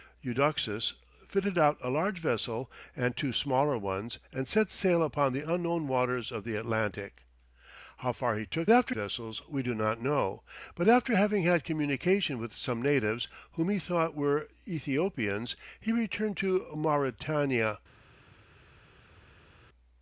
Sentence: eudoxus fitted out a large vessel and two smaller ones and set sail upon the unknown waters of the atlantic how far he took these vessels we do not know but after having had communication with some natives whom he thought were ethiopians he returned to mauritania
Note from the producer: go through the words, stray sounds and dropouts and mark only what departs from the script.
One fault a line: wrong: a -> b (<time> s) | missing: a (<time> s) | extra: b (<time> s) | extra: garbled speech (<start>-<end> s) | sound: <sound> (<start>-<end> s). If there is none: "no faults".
wrong: these -> after (8.7 s)